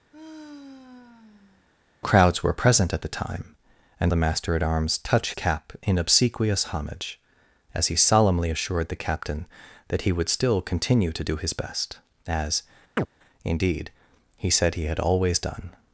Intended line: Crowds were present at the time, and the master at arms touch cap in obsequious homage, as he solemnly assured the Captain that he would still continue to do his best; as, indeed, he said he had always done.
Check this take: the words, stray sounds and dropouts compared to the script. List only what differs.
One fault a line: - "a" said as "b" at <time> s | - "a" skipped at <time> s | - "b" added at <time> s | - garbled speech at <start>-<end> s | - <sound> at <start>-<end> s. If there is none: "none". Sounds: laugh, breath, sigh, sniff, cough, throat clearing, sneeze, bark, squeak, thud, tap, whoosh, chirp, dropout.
- sigh at 0.1-1.7 s
- chirp at 13.0-13.1 s